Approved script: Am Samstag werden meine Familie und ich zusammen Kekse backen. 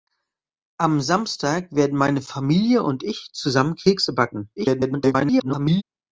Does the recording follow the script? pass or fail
fail